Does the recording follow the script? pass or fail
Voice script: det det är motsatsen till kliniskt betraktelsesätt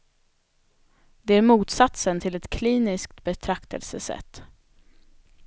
fail